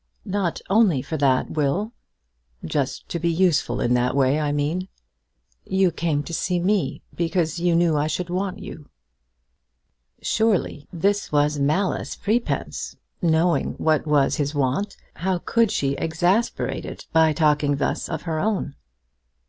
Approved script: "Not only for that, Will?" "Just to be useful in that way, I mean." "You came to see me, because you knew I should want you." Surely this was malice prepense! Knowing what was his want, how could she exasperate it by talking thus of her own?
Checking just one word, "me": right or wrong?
right